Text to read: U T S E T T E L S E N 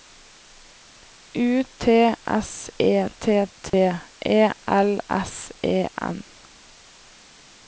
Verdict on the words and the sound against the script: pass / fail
fail